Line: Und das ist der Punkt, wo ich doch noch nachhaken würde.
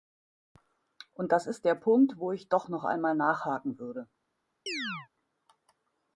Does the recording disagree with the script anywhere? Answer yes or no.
yes